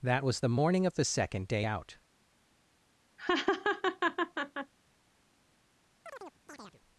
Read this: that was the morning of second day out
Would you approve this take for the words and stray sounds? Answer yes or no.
no